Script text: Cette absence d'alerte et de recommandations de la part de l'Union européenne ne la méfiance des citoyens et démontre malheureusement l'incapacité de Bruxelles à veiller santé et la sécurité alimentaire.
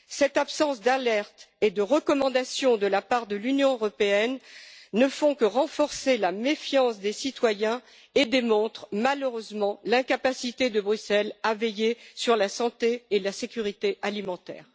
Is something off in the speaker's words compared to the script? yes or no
yes